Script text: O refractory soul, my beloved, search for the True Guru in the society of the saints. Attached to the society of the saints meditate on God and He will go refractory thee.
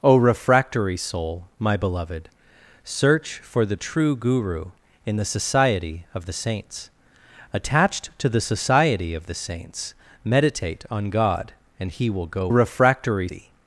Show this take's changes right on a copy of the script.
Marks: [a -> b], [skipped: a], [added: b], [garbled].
O refractory soul, my beloved, search for the True Guru in the society of the saints. Attached to the society of the saints meditate on God and He will go refractory thee.